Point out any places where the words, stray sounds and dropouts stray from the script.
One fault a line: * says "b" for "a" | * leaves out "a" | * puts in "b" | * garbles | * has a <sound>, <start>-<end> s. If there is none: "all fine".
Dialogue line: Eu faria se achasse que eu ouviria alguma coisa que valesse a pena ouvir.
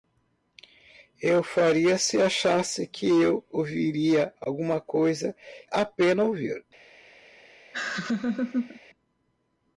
* leaves out "que valesse"
* has a laugh, 7.7-8.8 s